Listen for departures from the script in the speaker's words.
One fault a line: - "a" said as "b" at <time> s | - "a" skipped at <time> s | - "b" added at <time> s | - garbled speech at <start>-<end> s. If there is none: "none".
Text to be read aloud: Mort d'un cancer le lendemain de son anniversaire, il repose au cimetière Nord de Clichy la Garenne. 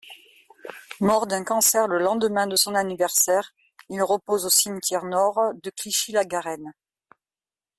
none